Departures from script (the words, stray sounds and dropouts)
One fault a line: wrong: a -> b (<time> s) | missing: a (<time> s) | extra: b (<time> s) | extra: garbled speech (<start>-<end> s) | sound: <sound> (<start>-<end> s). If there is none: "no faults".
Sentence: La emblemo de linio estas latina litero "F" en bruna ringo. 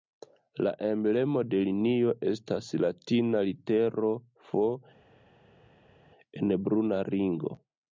no faults